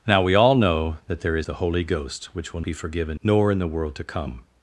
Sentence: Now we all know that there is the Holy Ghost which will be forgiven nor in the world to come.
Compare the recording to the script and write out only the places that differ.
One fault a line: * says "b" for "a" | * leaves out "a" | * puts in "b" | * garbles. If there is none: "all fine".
all fine